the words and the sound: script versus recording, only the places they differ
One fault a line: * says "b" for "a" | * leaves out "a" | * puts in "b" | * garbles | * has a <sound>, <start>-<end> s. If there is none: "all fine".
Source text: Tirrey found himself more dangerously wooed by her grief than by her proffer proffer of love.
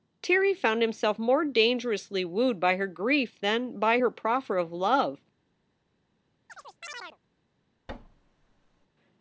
* leaves out "proffer"
* has a chirp, 6.5-7.2 s
* has a thud, 7.9-8.9 s